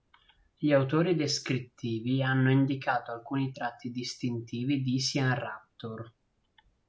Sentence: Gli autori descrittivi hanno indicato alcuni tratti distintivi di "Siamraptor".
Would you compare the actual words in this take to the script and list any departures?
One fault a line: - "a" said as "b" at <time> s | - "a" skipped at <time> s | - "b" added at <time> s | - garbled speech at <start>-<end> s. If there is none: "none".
none